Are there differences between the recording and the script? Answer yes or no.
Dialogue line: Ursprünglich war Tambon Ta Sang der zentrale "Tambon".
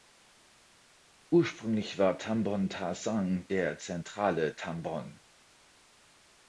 no